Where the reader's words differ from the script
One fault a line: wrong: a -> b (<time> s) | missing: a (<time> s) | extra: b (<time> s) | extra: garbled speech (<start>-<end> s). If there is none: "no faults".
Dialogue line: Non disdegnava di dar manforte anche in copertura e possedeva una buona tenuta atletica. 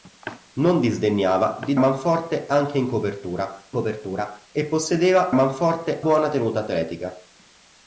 missing: dar (1.8 s)
extra: copertura (3.7 s)
wrong: una -> manforte (5.3 s)